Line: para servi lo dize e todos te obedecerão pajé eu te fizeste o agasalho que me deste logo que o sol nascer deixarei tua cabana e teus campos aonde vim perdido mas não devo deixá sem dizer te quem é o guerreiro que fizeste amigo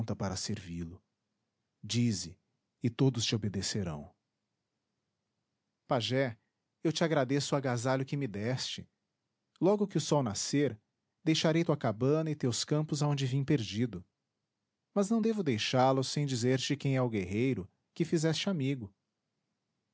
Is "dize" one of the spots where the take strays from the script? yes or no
no